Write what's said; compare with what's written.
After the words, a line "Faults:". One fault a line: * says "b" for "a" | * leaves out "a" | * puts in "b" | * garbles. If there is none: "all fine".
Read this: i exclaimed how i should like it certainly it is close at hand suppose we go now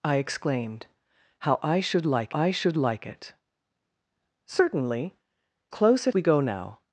i exclaimed how i should like i should like it certainly close at we go now
Faults:
* says "i should like" for "it certainly"
* says "certainly" for "is"
* leaves out "hand suppose"